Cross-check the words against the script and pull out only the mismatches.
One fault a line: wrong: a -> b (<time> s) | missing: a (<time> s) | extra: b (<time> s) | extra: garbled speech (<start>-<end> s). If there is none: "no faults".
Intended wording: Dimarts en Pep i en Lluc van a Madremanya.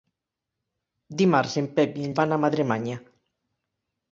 missing: Lluc (2.2 s)